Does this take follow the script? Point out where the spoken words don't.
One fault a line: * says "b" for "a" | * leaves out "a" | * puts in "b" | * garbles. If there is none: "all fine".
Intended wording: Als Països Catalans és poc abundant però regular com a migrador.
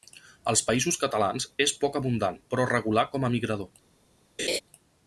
all fine